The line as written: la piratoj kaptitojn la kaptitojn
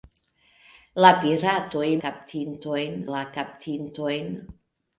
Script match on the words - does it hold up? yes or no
yes